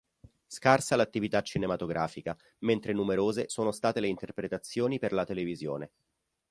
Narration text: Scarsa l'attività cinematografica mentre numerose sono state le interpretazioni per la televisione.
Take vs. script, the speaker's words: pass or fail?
pass